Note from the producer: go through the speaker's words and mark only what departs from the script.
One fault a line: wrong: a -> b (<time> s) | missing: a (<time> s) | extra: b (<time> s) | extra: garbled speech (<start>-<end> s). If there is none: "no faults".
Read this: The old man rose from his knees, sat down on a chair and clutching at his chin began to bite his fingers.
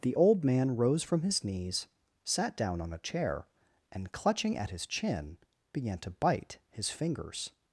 no faults